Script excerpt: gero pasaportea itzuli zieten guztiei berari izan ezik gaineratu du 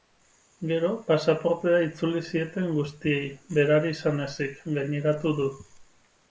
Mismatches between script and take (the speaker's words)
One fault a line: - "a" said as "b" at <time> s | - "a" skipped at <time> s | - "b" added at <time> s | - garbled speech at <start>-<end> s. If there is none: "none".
none